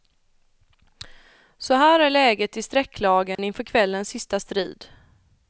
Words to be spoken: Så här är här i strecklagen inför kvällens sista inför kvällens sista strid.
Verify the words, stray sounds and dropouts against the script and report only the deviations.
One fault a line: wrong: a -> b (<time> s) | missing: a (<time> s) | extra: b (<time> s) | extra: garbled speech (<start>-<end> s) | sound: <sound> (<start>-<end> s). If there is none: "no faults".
wrong: här -> läget (2.1 s)
sound: dropout (3.4-3.4 s)
missing: inför kvällens sista (4.4 s)